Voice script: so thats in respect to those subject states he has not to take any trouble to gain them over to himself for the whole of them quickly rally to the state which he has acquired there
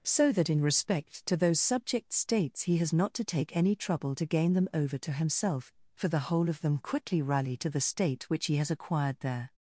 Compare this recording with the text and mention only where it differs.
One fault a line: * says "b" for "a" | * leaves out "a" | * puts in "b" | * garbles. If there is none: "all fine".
* says "that" for "thats"